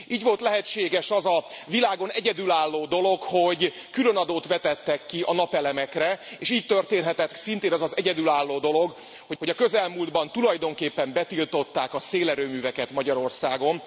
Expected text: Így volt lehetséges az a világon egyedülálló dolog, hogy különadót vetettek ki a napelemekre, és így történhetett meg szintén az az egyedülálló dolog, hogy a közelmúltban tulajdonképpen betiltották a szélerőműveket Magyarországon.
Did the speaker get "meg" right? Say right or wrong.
wrong